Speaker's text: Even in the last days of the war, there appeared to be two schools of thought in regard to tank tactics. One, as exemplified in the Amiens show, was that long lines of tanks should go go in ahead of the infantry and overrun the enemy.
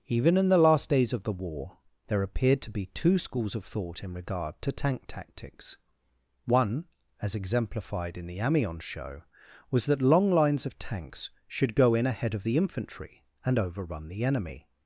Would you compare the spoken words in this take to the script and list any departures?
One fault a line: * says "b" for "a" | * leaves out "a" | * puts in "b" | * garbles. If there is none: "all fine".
* leaves out "go"